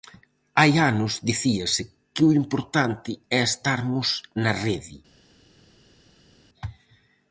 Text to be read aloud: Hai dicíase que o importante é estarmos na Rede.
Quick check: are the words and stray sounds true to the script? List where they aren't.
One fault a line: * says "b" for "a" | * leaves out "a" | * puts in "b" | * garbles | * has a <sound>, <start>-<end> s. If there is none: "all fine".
* puts in "anos"